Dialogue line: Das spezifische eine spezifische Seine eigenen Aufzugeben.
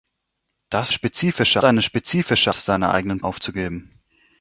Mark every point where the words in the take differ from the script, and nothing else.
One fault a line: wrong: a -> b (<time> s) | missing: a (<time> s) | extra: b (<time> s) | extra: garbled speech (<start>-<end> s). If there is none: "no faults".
no faults